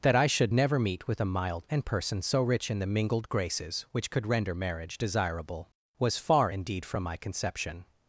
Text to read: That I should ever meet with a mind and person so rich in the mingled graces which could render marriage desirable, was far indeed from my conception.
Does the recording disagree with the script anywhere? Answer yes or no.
yes